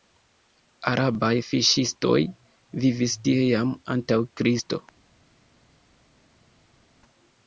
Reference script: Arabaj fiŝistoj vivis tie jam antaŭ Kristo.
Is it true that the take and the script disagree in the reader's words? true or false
false